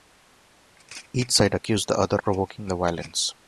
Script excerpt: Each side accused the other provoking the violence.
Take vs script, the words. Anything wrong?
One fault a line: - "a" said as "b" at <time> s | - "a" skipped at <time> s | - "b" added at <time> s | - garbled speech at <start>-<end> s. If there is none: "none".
none